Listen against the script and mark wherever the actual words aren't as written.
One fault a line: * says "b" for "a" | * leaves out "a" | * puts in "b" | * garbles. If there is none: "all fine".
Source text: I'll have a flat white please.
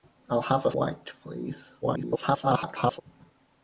* leaves out "flat"
* garbles